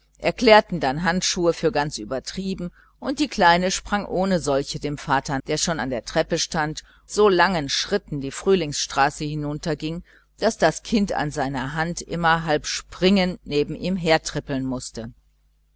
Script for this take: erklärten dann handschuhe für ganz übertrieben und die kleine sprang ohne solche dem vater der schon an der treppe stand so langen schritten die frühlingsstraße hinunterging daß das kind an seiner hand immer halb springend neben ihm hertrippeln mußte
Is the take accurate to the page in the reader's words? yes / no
yes